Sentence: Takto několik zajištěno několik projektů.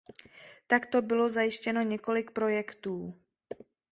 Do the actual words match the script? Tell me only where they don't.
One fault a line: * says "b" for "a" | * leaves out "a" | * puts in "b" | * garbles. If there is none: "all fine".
* says "bylo" for "několik"